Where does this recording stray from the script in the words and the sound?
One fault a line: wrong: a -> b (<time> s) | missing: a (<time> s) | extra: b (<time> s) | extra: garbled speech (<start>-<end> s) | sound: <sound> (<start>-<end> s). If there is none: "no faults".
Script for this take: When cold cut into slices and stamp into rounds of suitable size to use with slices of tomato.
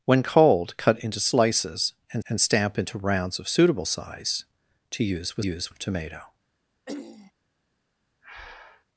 extra: and (2.3 s)
wrong: slices -> use (5.4 s)
sound: throat clearing (6.9-7.3 s)
sound: breath (8.2-8.8 s)